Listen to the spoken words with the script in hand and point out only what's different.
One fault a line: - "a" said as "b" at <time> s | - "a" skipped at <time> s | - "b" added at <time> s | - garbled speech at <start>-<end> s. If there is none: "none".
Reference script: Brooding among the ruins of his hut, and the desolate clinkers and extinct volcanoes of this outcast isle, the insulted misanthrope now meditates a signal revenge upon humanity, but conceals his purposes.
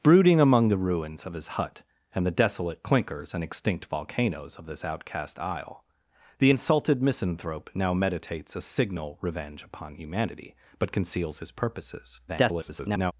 - garbled speech at 12.3-13.1 s